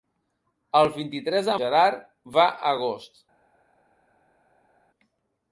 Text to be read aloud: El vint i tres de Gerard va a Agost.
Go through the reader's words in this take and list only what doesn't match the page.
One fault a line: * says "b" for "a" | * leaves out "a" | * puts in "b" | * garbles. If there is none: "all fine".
all fine